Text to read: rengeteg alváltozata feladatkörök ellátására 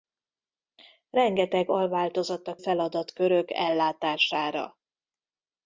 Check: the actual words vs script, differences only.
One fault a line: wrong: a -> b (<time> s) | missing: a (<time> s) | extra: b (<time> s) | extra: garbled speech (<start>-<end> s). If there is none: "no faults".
no faults